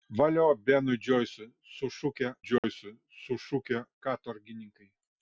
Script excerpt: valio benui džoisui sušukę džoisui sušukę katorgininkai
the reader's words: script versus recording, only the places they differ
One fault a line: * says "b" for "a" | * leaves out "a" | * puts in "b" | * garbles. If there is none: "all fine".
all fine